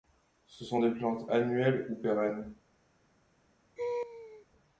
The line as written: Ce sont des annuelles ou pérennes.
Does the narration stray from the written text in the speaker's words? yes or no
yes